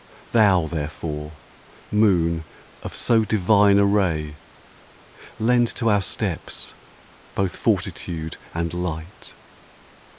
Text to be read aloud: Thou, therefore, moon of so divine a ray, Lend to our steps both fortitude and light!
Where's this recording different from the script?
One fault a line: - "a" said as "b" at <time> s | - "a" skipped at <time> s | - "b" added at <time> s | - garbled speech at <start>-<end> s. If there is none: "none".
none